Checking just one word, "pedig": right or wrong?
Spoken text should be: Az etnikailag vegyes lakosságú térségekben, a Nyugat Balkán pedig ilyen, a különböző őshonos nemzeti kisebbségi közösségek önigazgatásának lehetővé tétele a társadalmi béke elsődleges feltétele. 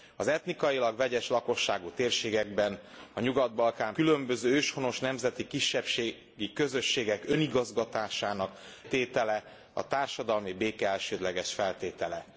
wrong